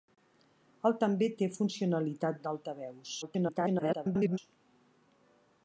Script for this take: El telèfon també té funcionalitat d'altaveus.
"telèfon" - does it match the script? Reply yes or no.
no